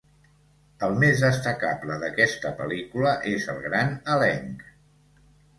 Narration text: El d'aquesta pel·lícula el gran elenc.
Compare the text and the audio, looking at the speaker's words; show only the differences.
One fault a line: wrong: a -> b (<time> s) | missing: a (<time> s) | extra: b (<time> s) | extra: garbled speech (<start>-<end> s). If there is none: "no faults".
extra: més destacable (1.0 s)
extra: és (3.4 s)